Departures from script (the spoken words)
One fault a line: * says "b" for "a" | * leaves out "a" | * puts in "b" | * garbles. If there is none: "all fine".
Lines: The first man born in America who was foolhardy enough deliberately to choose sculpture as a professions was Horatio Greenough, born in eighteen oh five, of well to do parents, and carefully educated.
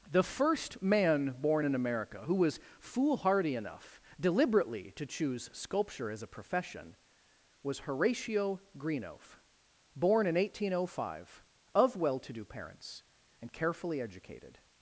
* says "profession" for "professions"